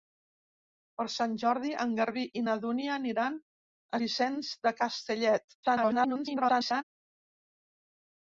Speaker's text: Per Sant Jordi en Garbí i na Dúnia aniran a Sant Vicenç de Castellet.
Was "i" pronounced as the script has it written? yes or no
yes